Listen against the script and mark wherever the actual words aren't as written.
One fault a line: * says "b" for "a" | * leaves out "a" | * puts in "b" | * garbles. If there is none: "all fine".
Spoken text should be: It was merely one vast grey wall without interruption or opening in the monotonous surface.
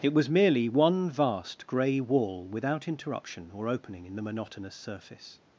all fine